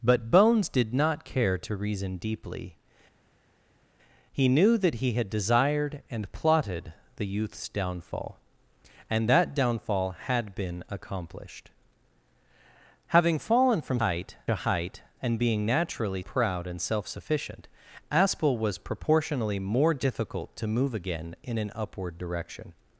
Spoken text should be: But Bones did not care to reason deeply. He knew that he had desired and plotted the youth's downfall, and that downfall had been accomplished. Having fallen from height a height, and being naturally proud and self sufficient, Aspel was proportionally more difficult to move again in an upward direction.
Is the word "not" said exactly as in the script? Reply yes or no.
yes